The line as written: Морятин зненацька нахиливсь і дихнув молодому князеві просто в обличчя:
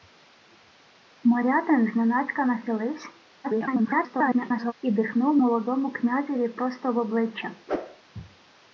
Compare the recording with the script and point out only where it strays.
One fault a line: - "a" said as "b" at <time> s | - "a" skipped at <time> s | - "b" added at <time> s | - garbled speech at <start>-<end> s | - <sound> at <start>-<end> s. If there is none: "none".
- garbled speech at 3.4-4.7 s
- whoosh at 7.7-8.0 s